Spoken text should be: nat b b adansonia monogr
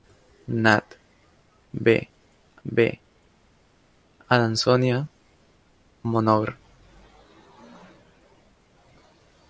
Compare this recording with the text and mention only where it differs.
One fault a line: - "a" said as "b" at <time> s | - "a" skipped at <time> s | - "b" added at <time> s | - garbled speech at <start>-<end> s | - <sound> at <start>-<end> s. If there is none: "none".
none